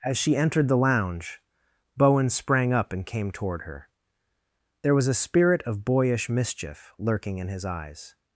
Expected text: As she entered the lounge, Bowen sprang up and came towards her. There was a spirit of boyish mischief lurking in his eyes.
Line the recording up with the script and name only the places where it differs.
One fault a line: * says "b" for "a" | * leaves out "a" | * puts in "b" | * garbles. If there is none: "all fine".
* says "toward" for "towards"